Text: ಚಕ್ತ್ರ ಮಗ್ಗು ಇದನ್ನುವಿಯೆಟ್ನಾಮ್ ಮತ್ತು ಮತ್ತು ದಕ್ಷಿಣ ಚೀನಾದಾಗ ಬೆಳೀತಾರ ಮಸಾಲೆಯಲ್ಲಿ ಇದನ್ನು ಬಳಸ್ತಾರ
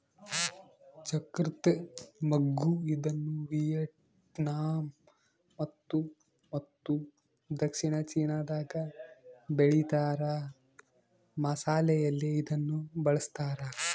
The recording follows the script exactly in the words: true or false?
true